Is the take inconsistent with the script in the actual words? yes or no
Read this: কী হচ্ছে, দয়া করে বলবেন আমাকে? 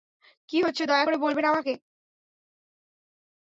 no